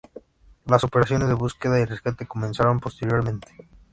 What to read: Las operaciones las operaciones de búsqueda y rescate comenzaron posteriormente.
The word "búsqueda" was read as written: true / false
true